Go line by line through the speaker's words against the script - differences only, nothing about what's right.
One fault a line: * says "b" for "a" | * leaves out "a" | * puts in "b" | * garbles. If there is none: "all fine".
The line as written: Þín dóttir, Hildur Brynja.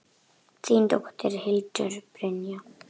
all fine